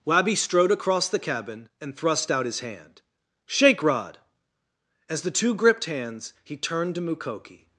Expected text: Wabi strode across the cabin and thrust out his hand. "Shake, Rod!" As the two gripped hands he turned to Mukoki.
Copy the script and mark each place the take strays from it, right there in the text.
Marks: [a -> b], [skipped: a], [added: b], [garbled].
Wabi strode across the cabin and thrust out his hand. "Shake, Rod!" As the two gripped hands he turned to Mukoki.